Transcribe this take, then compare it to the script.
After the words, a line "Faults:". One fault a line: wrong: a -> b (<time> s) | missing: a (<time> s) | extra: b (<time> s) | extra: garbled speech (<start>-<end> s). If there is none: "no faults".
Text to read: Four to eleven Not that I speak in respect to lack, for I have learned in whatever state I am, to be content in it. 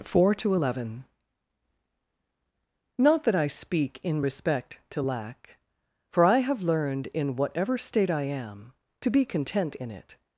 Four to eleven Not that I speak in respect to lack, for I have learned in whatever state I am, to be content in it.
Faults:
no faults